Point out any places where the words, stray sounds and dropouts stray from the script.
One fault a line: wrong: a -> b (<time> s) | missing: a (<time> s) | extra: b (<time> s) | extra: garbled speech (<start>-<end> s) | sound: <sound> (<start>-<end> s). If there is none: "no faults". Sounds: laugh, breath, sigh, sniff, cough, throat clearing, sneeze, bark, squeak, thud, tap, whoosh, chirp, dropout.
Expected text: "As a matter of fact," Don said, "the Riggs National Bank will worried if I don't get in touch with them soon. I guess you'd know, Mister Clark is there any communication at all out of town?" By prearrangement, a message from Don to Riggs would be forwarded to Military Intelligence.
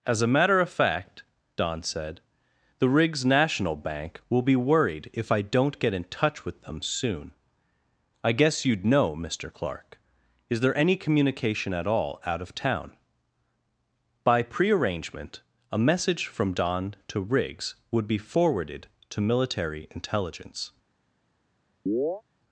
extra: be (4.4 s)
sound: chirp (21.9-22.2 s)